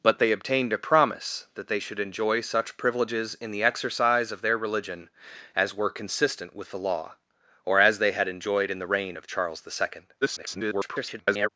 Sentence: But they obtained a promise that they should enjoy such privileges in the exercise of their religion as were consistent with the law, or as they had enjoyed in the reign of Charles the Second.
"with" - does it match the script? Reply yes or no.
yes